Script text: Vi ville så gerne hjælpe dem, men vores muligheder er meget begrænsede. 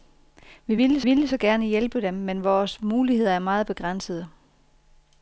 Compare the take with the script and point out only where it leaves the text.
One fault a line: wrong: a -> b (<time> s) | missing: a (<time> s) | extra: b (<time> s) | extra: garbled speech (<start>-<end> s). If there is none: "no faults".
extra: ville (1.0 s)